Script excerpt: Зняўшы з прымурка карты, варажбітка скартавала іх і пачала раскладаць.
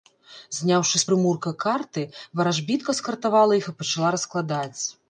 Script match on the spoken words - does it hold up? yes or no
yes